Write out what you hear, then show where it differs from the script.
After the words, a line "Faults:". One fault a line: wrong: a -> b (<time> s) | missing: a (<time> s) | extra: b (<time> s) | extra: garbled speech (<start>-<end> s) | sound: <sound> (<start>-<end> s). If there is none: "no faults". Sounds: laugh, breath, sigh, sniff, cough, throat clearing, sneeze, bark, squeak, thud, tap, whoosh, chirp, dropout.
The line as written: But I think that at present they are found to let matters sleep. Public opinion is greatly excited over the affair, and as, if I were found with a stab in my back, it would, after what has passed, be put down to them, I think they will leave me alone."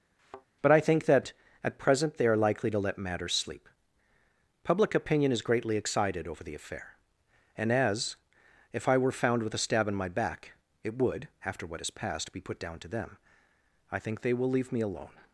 But I think that at present they are likely to let matters sleep. Public opinion is greatly excited over the affair, and as, if I were found with a stab in my back, it would, after what has passed, be put down to them, I think they will leave me alone."
Faults:
sound: thud (0.2-0.5 s)
wrong: found -> likely (2.4 s)